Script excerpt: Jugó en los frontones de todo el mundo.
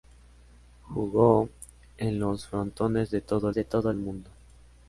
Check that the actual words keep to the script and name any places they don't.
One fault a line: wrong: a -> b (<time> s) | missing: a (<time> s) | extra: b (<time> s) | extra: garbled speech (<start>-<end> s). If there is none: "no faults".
extra: de todo (3.5 s)